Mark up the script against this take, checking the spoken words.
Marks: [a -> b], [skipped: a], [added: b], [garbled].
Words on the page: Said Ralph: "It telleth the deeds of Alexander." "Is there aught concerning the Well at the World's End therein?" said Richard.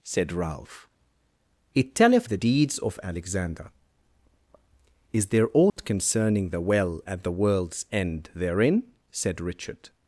Said Ralph: "It telleth the deeds of Alexander." "Is there aught concerning the Well at the World's End therein?" said Richard.